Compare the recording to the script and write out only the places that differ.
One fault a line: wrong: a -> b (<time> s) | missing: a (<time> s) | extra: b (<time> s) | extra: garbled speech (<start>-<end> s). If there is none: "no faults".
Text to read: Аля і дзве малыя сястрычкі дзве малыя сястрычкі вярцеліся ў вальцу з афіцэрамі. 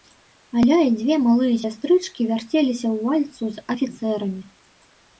missing: дзве малыя сястрычкі (2.3 s)